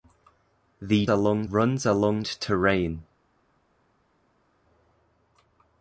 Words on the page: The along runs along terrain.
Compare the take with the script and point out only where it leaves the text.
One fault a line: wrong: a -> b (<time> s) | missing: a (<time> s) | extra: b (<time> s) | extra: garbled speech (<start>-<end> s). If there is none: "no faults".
no faults